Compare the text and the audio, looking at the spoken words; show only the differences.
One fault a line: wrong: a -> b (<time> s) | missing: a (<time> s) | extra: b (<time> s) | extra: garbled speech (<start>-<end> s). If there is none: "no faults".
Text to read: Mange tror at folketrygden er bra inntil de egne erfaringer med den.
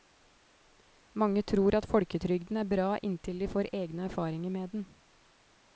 extra: får (3.5 s)